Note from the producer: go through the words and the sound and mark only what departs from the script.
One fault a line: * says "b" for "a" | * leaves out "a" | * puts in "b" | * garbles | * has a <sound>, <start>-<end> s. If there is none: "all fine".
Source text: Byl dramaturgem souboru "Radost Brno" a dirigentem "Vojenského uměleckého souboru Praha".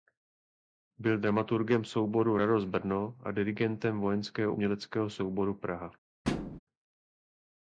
* has a thud, 6.2-6.6 s